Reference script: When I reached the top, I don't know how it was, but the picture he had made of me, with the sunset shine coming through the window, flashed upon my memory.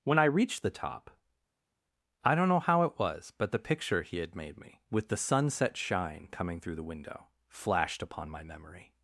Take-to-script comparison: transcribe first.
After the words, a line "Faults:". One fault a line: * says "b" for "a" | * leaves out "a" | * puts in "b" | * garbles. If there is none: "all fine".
When I reached the top, I don't know how it was, but the picture he had made me, with the sunset shine coming through the window, flashed upon my memory.
Faults:
* leaves out "of"